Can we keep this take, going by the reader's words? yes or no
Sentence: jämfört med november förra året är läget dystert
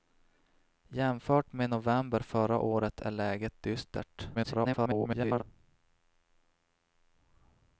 no